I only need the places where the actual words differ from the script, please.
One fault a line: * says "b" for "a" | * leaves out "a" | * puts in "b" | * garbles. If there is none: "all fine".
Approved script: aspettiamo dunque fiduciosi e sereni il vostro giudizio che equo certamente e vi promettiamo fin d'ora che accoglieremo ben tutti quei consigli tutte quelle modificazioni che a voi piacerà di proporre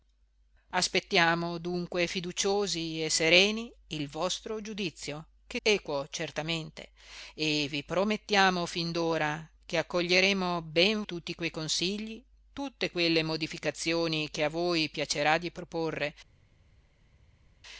all fine